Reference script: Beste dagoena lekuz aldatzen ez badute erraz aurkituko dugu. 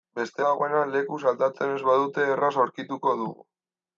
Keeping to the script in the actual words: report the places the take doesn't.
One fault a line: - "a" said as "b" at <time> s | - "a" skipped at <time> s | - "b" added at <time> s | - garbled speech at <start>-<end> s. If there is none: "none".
none